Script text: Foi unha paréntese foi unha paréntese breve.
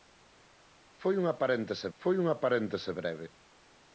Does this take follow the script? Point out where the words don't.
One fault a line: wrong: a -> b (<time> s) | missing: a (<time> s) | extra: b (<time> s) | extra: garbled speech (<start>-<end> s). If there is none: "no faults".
no faults